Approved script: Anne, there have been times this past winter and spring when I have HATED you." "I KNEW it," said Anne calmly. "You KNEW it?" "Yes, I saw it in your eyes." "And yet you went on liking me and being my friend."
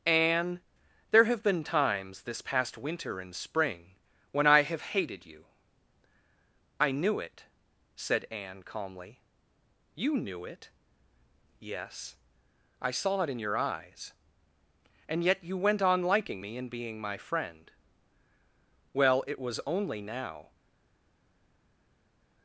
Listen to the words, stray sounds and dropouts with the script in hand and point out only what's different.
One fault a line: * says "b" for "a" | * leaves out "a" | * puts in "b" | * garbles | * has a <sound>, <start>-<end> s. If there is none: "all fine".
* puts in "Well it was only now"